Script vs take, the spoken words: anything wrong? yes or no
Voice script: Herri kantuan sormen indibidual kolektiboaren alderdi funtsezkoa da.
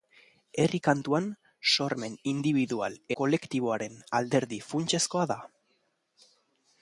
no